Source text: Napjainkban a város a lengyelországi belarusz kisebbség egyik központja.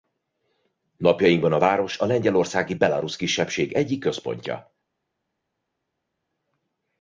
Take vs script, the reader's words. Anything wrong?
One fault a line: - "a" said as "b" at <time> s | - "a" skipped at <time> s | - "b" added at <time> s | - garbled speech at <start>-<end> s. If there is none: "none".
none